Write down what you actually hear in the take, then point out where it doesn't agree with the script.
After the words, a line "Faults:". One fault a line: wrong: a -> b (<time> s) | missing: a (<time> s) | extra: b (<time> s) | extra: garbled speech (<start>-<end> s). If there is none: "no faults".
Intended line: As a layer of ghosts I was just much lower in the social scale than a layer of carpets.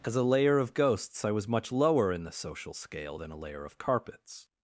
As a layer of ghosts I was much lower in the social scale than a layer of carpets.
Faults:
missing: just (1.5 s)